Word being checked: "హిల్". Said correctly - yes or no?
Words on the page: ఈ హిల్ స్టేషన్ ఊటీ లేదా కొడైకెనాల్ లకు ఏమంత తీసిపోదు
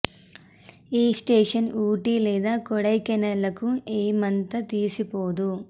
no